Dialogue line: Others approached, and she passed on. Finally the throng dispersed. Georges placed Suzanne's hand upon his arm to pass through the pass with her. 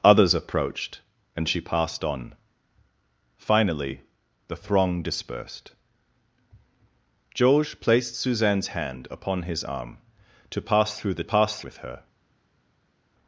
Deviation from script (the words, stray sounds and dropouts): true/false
false